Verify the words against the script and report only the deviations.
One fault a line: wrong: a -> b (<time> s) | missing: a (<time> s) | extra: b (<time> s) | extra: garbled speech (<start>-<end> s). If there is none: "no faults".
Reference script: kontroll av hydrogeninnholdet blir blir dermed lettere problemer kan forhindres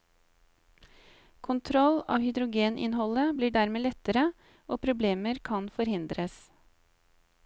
missing: blir (3.5 s)
extra: og (4.7 s)